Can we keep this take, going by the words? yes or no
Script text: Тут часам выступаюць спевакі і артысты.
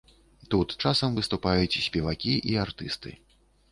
yes